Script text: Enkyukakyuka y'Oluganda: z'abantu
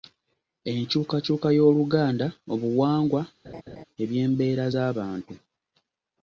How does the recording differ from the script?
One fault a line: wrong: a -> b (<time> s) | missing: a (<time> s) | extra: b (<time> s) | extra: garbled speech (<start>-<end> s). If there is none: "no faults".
extra: obuwangwa ebyembeera (2.5 s)